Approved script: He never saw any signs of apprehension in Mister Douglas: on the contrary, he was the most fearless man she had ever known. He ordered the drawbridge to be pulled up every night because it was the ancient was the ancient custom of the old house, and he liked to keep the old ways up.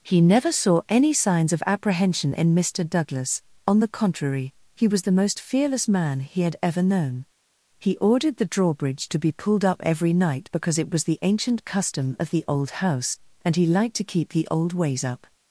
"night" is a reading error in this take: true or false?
false